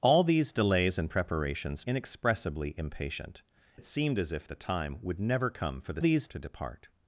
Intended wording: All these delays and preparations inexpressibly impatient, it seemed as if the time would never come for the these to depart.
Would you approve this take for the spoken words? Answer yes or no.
yes